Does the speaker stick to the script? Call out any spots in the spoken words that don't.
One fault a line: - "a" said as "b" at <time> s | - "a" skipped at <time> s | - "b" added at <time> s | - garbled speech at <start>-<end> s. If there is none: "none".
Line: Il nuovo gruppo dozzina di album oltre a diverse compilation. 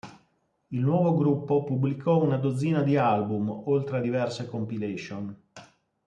- "pubblicò una" added at 1.6 s